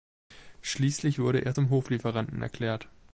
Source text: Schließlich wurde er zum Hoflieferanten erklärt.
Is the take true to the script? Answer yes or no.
yes